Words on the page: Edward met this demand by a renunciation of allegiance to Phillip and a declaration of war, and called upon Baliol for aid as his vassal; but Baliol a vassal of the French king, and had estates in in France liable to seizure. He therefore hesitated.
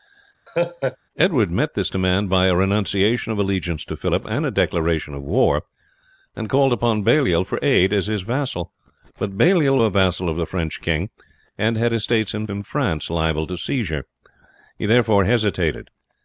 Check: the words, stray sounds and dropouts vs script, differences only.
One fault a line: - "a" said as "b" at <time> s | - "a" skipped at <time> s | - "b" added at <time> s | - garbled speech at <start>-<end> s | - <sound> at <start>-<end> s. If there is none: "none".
- laugh at 0.5-1.0 s